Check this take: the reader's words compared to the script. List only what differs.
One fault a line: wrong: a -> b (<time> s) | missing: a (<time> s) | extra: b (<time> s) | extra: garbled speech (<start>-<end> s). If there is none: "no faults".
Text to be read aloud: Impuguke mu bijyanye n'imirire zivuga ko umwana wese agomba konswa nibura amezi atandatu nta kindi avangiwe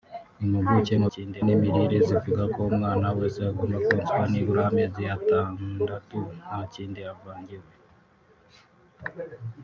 wrong: bijyanye -> kindi (1.1 s)